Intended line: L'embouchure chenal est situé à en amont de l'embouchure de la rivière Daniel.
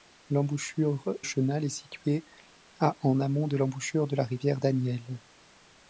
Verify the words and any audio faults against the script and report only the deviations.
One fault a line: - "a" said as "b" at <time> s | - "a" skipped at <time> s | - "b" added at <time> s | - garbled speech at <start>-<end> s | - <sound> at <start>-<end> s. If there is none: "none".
none